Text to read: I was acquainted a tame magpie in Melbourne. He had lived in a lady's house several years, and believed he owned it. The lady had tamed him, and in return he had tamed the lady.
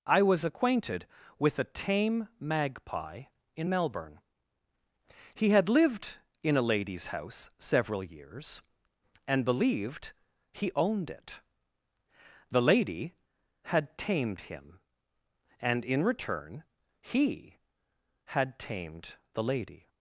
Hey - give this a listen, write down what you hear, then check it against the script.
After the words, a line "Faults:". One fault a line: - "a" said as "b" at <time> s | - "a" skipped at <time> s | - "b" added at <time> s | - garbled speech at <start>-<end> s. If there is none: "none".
I was acquainted with a tame magpie in Melbourne. He had lived in a lady's house several years, and believed he owned it. The lady had tamed him, and in return he had tamed the lady.
Faults:
- "with" added at 1.4 s